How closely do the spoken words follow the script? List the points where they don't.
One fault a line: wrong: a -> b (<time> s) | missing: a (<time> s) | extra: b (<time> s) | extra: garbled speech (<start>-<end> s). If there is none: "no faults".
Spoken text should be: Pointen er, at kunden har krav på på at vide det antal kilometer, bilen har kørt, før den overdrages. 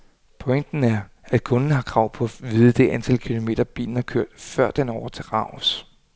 missing: på (2.2 s)